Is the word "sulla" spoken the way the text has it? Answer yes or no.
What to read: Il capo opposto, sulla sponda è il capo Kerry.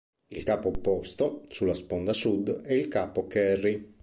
yes